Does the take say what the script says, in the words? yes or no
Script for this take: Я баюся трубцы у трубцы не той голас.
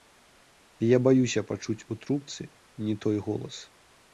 no